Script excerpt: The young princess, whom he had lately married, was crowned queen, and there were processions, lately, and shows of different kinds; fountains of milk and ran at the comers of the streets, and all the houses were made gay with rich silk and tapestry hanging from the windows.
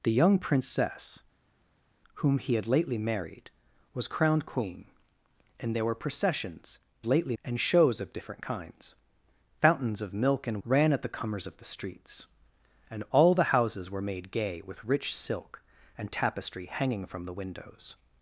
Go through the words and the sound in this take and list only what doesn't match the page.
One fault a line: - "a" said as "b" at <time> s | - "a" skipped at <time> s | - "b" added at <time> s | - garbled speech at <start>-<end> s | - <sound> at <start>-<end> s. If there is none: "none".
none